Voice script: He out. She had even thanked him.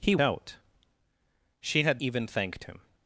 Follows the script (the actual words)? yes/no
yes